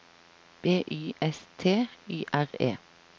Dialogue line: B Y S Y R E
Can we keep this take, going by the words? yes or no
no